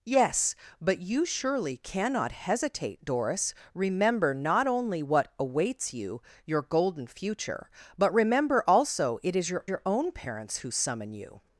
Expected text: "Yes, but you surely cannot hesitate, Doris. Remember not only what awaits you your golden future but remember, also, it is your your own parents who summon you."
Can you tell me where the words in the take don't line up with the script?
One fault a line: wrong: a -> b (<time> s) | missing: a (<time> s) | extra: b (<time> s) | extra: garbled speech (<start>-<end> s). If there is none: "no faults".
no faults